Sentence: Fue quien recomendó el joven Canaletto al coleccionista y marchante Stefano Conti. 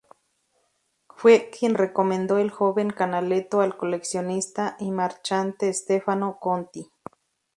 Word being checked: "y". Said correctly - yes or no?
yes